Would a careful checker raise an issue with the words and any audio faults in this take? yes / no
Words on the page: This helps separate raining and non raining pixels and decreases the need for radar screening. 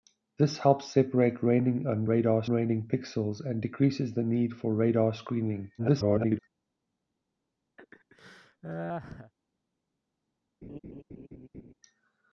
yes